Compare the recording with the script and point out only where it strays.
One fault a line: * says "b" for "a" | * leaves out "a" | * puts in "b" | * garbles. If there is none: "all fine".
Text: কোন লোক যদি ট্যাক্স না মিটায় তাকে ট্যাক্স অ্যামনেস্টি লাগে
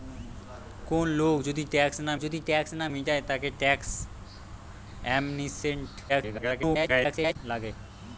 * puts in "যদি ট্যাক্স না"
* garbles